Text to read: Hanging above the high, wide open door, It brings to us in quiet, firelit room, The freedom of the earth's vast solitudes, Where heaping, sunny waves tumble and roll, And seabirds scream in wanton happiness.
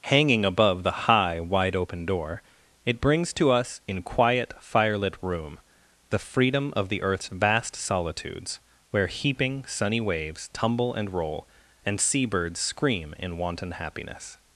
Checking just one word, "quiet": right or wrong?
right